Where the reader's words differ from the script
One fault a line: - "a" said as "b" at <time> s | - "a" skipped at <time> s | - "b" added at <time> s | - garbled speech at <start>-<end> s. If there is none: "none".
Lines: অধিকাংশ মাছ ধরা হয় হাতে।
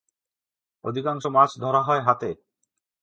none